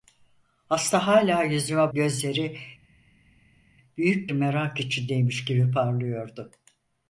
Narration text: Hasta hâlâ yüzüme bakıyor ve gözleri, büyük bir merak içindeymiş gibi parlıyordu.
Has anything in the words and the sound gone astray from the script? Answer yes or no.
yes